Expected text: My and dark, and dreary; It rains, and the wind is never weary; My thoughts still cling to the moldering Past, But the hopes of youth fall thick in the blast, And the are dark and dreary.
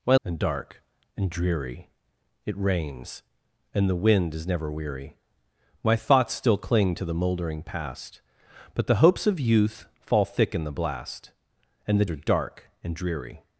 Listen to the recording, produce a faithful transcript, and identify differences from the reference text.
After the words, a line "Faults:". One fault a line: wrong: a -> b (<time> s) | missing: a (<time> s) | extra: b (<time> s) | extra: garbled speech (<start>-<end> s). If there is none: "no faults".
My and dark, and dreary; It rains, and the wind is never weary; My thoughts still cling to the moldering Past, But the hopes of youth fall thick in the blast, And the are dark and dreary.
Faults:
no faults